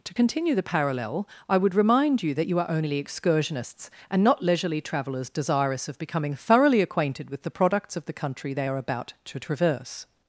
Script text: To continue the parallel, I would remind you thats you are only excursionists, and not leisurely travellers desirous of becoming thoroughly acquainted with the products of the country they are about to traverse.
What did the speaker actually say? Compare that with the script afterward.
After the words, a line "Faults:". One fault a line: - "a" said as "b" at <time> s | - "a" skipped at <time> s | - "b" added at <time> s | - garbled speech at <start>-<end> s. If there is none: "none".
To continue the parallel, I would remind you that you are only excursionists, and not leisurely travellers desirous of becoming thoroughly acquainted with the products of the country they are about to traverse.
Faults:
- "thats" said as "that" at 2.3 s